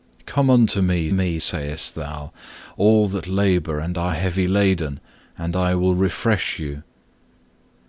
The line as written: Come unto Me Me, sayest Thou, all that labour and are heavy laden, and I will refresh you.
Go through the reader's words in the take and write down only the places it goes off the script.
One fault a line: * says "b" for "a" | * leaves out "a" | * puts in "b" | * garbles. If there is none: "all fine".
all fine